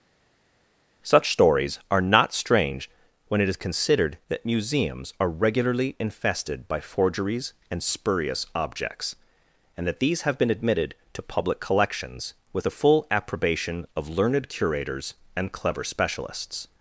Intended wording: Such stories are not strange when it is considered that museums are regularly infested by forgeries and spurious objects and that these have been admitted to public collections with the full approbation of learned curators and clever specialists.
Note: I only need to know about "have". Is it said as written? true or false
true